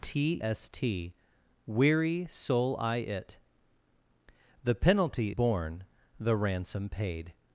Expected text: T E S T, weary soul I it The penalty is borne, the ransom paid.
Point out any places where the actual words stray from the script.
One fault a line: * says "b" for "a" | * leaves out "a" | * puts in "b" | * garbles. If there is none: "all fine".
* leaves out "E"
* leaves out "is"